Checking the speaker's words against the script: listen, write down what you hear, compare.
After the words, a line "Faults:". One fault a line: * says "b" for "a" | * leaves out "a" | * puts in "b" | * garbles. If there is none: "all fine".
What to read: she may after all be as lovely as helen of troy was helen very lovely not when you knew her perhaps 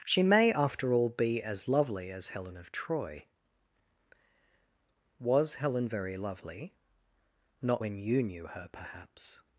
she may after all be as lovely as helen of troy was helen very lovely not when you knew her perhaps
Faults:
all fine